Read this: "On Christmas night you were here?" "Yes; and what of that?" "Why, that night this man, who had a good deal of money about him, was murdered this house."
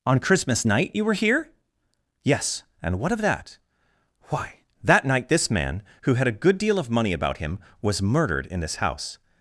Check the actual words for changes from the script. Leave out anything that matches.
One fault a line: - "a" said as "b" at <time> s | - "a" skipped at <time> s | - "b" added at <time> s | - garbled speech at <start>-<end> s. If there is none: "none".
- "in" added at 8.4 s